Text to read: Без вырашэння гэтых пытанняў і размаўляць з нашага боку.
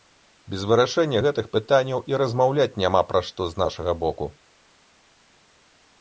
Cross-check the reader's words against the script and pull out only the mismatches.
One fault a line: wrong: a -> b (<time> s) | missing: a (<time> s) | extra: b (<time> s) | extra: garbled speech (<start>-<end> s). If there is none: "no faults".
extra: няма пра што (2.8 s)